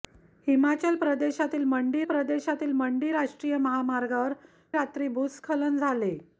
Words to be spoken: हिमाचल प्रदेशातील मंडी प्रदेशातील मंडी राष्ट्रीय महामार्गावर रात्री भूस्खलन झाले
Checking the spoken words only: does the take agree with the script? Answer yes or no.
yes